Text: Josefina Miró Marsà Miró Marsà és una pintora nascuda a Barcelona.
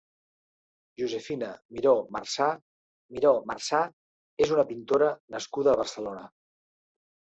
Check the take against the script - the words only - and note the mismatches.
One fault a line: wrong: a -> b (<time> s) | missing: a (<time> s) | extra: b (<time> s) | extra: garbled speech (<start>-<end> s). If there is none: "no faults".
no faults